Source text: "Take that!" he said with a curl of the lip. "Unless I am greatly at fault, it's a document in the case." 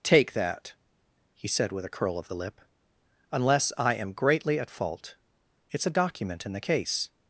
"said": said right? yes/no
yes